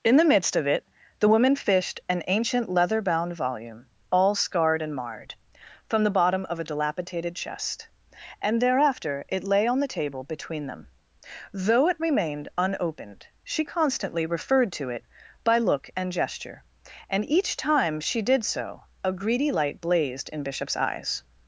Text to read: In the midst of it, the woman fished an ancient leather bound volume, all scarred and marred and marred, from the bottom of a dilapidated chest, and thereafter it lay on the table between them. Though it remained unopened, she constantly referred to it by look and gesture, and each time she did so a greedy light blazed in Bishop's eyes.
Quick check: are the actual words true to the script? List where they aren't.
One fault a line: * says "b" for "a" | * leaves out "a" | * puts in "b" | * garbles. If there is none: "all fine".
* leaves out "and marred"